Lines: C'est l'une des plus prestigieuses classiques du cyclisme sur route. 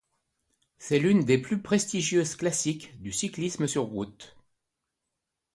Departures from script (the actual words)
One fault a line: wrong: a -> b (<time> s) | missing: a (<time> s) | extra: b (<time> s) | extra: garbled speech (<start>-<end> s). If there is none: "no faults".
no faults